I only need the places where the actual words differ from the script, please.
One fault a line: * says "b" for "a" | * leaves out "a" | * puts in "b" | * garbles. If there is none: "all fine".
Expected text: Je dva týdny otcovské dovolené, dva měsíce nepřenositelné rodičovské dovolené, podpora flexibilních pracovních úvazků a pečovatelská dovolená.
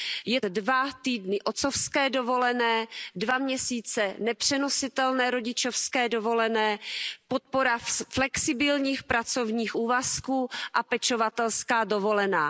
all fine